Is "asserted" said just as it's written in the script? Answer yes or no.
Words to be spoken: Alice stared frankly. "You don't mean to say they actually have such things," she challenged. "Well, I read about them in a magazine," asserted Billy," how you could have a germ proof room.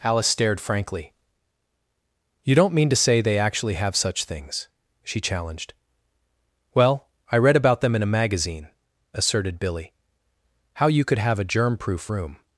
yes